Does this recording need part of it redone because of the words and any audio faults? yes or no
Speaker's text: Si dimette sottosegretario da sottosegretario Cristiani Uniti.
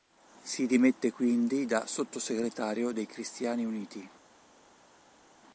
yes